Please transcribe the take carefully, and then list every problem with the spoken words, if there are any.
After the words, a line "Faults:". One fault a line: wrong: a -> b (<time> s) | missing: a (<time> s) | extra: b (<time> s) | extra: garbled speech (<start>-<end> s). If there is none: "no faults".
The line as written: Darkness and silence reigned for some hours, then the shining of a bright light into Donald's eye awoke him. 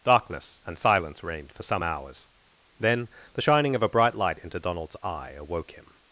Darkness and silence reigned for some hours, then the shining of a bright light into Donald's eye awoke him.
Faults:
no faults